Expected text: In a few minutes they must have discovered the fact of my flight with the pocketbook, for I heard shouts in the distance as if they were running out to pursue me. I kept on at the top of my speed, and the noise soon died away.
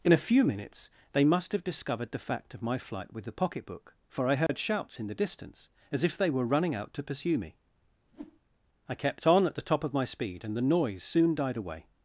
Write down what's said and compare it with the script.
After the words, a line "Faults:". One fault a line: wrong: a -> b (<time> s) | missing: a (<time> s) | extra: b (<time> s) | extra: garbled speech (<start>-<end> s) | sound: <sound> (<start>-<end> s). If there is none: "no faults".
In a few minutes they must have discovered the fact of my flight with the pocketbook, for I heard shouts in the distance as if they were running out to pursue me. I kept on at the top of my speed, and the noise soon died away.
Faults:
sound: dropout (4.5-4.5 s)
sound: whoosh (8.1-8.4 s)